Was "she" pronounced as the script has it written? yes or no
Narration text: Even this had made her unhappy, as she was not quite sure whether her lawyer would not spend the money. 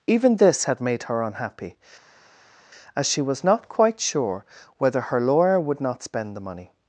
yes